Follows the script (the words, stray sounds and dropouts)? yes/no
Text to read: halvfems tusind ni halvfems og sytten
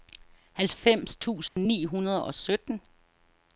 no